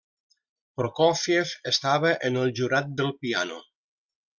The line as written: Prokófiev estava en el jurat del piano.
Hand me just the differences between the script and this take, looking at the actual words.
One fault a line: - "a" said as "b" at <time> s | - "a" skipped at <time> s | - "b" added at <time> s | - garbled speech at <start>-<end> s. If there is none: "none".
none